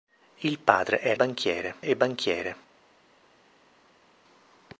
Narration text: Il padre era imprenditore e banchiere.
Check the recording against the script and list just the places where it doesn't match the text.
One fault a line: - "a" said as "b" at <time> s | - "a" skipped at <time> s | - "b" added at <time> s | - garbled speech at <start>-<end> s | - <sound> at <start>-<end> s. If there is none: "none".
- "imprenditore" said as "banchiere" at 1.1 s